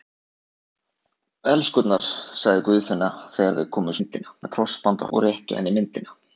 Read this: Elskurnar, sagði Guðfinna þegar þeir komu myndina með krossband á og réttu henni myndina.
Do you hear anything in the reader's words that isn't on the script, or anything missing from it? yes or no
no